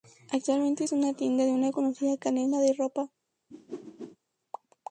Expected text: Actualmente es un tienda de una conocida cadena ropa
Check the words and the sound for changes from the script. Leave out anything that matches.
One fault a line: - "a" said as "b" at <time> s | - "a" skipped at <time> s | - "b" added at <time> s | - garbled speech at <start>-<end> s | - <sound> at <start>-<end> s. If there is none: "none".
- "un" said as "una" at 0.9 s
- "de" added at 2.6 s
- whoosh at 3.5-4.2 s